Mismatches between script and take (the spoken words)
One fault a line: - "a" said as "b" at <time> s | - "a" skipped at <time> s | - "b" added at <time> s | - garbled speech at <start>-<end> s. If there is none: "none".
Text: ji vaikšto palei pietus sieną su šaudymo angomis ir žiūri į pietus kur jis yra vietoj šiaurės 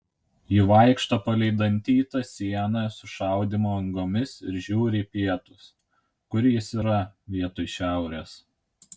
- "pietus" said as "dantytą" at 1.6 s